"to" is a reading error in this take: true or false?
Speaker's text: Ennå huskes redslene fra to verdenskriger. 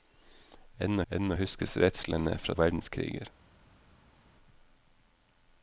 true